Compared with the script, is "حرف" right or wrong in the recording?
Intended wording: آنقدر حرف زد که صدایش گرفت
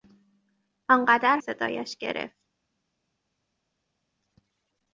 wrong